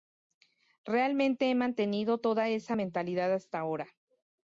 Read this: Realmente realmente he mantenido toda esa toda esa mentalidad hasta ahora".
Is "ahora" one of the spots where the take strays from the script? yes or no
no